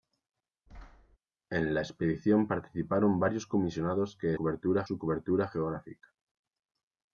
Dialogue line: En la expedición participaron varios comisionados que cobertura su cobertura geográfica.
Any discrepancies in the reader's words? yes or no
no